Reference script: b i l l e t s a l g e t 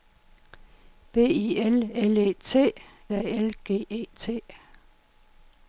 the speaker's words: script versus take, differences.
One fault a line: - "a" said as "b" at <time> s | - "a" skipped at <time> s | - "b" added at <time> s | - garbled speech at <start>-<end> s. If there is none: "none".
- "s" skipped at 2.7 s